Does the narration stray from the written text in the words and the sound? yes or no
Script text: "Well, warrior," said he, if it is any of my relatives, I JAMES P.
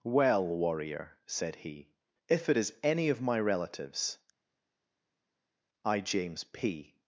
no